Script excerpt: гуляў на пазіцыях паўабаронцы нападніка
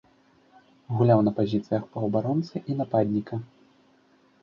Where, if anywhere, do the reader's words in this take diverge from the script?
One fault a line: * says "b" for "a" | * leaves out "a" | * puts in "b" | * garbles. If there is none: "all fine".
* puts in "і"